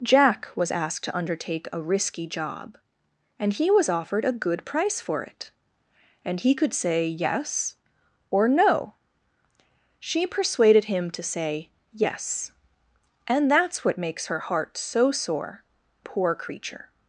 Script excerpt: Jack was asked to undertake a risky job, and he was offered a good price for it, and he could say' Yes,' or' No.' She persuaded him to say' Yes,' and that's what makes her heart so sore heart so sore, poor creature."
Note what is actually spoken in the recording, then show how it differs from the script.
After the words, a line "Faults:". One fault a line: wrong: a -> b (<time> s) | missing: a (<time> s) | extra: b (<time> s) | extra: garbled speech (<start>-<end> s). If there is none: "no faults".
Jack was asked to undertake a risky job, and he was offered a good price for it, and he could say' Yes,' or' No.' She persuaded him to say' Yes,' and that's what makes her heart so sore, poor creature."
Faults:
missing: heart so sore (15.6 s)